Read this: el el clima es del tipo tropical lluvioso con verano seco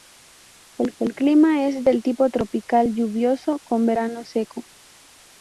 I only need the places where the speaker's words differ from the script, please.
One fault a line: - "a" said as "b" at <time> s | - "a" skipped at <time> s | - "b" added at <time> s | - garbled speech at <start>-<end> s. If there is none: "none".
none